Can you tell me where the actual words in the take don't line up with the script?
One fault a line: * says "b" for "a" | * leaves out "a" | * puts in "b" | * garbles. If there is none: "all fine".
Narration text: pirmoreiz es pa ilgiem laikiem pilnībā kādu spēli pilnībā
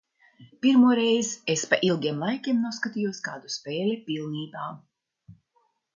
* says "noskatījos" for "pilnībā"